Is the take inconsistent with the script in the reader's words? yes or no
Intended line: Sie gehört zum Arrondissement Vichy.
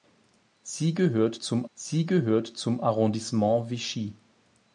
yes